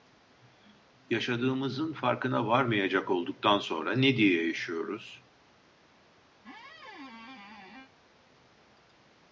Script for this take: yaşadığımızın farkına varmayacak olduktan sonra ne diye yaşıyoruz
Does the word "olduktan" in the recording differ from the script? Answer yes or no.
no